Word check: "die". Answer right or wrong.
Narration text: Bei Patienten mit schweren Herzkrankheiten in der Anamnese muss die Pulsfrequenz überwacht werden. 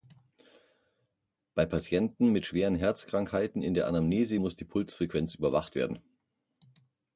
right